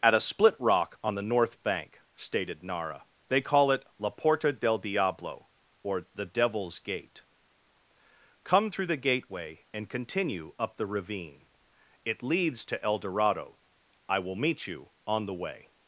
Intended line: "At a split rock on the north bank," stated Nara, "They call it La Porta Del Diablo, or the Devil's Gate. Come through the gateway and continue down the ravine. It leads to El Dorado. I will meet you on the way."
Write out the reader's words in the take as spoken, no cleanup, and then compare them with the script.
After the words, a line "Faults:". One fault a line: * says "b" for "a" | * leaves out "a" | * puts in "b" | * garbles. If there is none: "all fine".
"At a split rock on the north bank," stated Nara, "They call it La Porta Del Diablo, or the Devil's Gate. Come through the gateway and continue up the ravine. It leads to El Dorado. I will meet you on the way."
Faults:
* says "up" for "down"